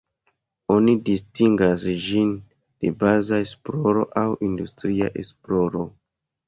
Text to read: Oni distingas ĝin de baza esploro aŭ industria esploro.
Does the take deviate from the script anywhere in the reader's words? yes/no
no